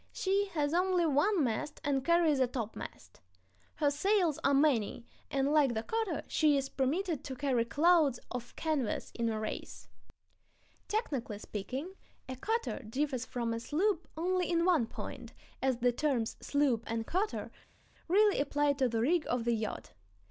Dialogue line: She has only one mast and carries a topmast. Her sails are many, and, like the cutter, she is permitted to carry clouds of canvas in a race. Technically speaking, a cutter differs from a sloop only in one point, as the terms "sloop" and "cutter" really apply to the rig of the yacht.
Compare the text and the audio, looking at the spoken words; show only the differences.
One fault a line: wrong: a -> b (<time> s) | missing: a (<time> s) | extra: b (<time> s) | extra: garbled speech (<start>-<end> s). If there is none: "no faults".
no faults